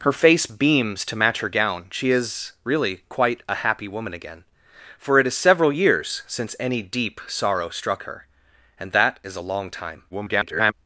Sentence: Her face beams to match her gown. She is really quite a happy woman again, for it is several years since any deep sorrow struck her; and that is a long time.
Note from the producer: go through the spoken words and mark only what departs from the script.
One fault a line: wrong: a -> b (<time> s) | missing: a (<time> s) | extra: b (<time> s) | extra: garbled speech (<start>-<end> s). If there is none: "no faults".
extra: garbled speech (10.1-10.7 s)